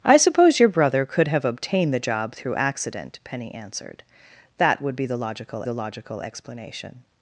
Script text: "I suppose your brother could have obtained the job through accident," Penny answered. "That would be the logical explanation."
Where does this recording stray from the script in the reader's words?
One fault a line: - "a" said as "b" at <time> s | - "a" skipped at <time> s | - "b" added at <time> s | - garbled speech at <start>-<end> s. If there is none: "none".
- "the logical" added at 5.6 s